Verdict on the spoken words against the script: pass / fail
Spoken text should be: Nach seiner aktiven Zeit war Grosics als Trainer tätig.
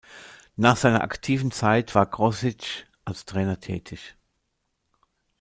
pass